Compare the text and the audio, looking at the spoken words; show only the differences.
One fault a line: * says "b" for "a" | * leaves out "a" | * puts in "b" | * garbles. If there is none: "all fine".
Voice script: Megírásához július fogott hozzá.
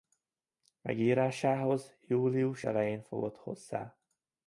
* puts in "elején"